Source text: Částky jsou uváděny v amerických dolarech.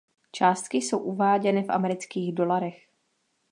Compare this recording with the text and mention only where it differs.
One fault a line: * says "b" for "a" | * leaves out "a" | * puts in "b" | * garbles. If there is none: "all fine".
all fine